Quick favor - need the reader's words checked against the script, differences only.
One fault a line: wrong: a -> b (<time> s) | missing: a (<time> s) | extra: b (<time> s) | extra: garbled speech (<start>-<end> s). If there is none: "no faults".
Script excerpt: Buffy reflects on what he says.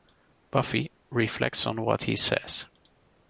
no faults